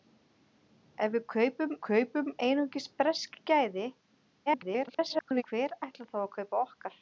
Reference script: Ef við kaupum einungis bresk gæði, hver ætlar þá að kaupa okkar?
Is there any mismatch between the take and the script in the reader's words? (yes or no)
yes